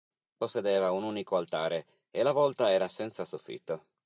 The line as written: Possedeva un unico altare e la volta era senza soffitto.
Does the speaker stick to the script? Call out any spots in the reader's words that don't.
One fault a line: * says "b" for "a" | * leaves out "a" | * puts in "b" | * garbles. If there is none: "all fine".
all fine